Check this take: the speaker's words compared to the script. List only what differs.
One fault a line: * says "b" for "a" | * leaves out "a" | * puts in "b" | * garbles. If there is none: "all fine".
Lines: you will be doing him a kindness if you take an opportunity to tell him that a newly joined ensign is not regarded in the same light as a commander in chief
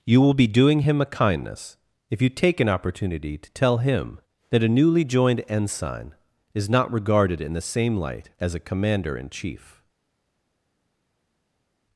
all fine